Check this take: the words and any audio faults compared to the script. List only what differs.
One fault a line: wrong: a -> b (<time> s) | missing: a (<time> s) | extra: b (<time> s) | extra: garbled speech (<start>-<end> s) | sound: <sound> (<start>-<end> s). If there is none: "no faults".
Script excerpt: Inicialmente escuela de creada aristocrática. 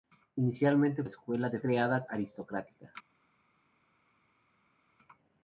no faults